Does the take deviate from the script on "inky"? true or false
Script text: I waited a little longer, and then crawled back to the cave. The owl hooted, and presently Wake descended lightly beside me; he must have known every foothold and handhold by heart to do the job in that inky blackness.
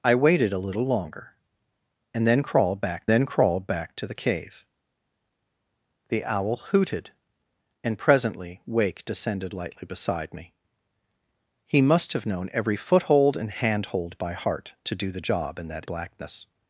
true